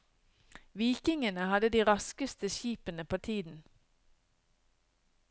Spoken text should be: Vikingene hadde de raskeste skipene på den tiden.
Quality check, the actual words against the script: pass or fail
fail